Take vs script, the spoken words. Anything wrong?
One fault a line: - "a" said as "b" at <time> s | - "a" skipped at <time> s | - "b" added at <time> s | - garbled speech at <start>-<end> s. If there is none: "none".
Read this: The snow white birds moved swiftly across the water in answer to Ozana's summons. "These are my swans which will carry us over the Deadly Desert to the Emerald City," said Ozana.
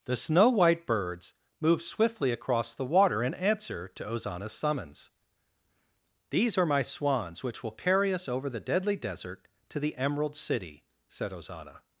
none